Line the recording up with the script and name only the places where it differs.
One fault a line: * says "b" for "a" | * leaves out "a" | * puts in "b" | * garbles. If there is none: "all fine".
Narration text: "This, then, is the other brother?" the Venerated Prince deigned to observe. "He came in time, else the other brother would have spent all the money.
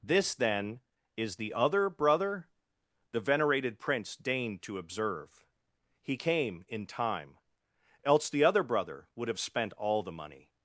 all fine